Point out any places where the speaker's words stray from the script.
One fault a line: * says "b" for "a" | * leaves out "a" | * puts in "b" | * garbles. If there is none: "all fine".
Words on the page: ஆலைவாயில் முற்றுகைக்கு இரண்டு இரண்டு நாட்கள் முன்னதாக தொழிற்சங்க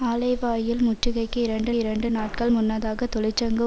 all fine